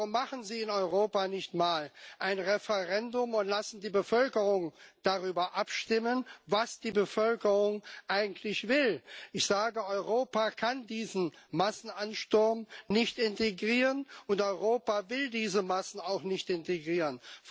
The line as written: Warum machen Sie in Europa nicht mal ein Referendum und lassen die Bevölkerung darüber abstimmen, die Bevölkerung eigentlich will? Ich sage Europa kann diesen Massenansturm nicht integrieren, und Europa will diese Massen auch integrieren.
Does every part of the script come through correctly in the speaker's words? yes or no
no